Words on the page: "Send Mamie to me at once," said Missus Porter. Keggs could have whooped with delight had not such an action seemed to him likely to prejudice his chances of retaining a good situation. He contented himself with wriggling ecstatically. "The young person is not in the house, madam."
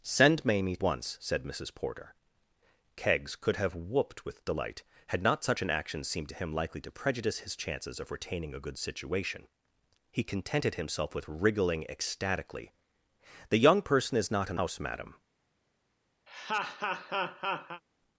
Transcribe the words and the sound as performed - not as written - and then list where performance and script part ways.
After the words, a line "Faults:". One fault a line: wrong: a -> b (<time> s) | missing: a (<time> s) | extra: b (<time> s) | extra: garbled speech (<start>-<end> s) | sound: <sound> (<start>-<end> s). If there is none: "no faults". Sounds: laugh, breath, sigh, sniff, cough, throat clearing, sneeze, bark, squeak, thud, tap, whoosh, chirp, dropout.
"Send Mamie once," said Missus Porter. Keggs could have whooped with delight had not such an action seemed to him likely to prejudice his chances of retaining a good situation. He contented himself with wriggling ecstatically. "The young person is not in house, madam."
Faults:
missing: to me at (0.8 s)
missing: the (14.6 s)
sound: laugh (16.3-17.8 s)